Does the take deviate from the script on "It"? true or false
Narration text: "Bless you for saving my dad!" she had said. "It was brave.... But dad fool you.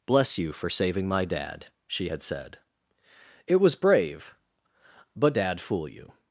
false